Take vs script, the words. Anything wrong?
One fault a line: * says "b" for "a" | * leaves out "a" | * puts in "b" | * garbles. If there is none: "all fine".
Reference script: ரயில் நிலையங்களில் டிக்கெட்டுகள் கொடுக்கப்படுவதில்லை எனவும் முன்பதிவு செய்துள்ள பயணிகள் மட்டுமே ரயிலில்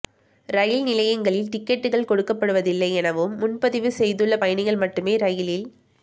all fine